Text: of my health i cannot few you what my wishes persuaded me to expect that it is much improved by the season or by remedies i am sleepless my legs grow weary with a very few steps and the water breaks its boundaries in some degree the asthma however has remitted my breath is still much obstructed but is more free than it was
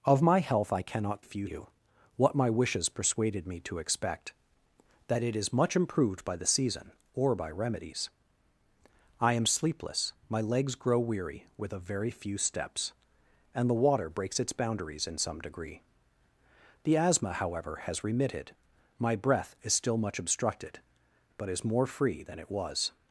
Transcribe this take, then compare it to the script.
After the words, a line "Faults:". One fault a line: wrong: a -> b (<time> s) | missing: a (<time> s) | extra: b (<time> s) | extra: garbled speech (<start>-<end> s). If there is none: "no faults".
of my health i cannot few you what my wishes persuaded me to expect that it is much improved by the season or by remedies i am sleepless my legs grow weary with a very few steps and the water breaks its boundaries in some degree the asthma however has remitted my breath is still much obstructed but is more free than it was
Faults:
no faults